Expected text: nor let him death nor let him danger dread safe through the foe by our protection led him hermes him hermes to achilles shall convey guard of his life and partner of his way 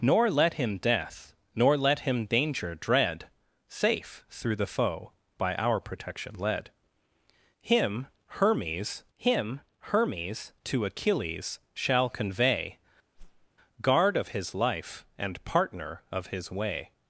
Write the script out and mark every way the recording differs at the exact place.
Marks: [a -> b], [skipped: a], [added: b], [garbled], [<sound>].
nor let him death nor let him danger dread safe through the foe by our protection led him hermes him hermes to achilles shall convey [whoosh] guard of his life and partner of his way